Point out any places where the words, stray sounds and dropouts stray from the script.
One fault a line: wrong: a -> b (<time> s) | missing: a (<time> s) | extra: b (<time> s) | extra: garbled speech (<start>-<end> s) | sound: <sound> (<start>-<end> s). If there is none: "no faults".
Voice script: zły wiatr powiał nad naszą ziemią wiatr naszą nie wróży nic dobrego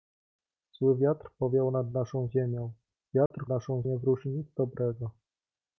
sound: dropout (3.3-3.3 s)